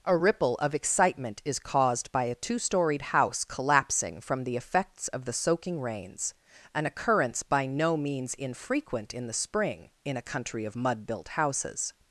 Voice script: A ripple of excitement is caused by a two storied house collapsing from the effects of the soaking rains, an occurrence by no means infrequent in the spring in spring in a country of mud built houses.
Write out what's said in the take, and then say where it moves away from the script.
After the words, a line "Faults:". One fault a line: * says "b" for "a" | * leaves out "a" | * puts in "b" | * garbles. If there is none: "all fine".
A ripple of excitement is caused by a two storied house collapsing from the effects of the soaking rains, an occurrence by no means infrequent in the spring in a country of mud built houses.
Faults:
* leaves out "spring in"